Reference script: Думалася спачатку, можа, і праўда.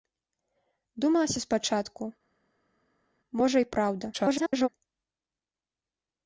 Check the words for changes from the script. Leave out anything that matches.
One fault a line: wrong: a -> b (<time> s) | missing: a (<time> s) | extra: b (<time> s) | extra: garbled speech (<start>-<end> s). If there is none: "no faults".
extra: garbled speech (4.1-4.7 s)